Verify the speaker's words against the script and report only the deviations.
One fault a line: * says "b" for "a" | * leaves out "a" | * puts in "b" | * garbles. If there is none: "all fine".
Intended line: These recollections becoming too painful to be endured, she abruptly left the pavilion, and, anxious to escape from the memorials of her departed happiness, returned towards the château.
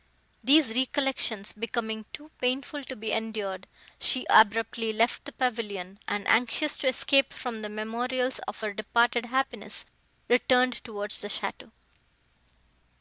all fine